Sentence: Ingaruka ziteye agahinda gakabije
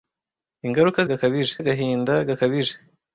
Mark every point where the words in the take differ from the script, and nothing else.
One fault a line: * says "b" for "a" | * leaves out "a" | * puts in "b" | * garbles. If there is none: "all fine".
* says "gakabije" for "ziteye"